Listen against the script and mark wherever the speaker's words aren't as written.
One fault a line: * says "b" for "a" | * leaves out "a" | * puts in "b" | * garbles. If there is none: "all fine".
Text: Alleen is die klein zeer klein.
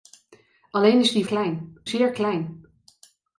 all fine